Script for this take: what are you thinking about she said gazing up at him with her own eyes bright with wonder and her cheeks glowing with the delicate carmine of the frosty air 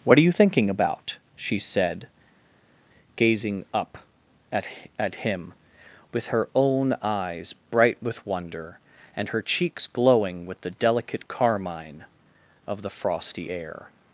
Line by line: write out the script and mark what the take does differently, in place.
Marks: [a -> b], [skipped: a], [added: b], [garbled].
what are you thinking about she said gazing up at [added: at] him with her own eyes bright with wonder and her cheeks glowing with the delicate carmine of the frosty air